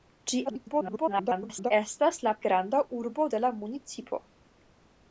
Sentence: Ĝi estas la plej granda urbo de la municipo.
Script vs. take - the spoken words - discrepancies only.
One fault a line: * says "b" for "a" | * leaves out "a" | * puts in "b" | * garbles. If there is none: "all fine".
* garbles
* leaves out "plej"